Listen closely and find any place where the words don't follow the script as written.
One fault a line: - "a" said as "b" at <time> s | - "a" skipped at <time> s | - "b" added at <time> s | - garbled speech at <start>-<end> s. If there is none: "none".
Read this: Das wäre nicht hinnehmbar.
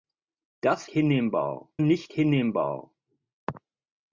- "wäre" said as "hinnehmbar" at 0.9 s